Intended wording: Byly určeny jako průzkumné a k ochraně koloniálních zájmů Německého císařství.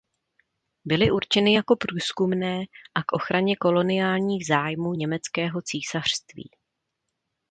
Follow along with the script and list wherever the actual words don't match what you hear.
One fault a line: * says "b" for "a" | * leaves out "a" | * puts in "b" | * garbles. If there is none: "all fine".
all fine